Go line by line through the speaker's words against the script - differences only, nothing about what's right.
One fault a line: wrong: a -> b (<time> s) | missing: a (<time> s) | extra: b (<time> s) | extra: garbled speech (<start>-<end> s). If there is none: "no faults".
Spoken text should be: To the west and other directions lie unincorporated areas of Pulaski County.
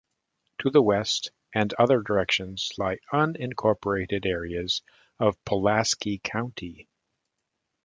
no faults